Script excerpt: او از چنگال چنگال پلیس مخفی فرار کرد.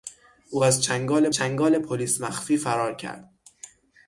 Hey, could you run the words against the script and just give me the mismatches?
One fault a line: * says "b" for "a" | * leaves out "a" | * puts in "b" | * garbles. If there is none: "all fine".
all fine